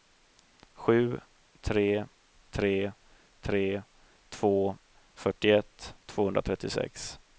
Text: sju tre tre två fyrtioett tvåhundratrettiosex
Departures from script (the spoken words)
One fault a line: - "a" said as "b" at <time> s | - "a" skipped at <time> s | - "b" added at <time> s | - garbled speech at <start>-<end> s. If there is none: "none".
- "tre" added at 3.4 s